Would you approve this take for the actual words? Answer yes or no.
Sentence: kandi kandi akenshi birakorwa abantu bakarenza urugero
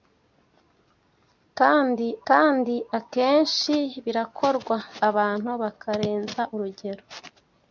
yes